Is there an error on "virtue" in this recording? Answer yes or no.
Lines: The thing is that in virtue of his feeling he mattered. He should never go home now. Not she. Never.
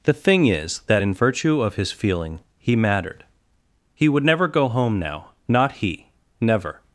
no